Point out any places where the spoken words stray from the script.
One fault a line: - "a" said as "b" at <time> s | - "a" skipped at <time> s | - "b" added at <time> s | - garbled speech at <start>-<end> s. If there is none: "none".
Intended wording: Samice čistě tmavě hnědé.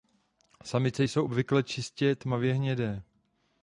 - "jsou obvykle" added at 1.0 s